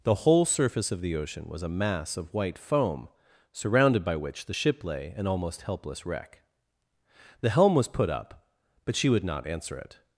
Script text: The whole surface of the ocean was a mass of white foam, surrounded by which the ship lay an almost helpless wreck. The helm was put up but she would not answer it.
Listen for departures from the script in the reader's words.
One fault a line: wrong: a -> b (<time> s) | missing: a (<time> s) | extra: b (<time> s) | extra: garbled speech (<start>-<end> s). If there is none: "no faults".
no faults